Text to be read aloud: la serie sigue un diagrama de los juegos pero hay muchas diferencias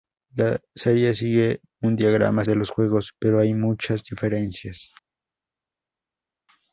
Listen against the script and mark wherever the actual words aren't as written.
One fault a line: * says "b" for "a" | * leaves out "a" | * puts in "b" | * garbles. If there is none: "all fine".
all fine